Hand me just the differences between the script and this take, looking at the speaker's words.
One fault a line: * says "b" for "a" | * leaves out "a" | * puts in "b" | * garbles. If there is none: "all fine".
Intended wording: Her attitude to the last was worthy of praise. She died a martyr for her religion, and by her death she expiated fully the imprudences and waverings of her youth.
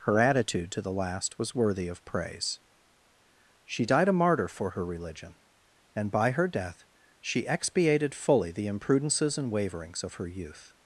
all fine